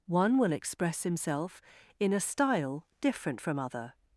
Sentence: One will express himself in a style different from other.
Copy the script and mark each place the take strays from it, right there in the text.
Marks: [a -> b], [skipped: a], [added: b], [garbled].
One will express himself in a style different from other.